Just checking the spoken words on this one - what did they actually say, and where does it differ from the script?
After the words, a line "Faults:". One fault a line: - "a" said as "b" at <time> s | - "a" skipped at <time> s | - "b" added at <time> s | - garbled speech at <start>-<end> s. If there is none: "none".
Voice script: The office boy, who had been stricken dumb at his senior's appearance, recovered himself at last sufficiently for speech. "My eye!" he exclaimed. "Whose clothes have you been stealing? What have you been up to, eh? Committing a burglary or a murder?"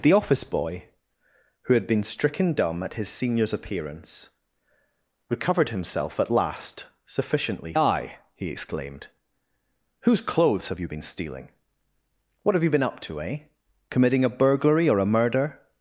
The office boy, who had been stricken dumb at his senior's appearance, recovered himself at last sufficiently eye!" he exclaimed. "Whose clothes have you been stealing? What have you been up to, eh? Committing a burglary or a murder?"
Faults:
- "for speech My" skipped at 7.7 s